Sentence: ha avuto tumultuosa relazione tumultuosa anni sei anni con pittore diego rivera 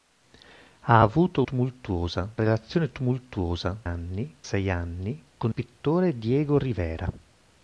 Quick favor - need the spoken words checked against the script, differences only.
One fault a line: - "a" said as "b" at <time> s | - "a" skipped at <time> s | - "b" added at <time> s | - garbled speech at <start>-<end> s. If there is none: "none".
none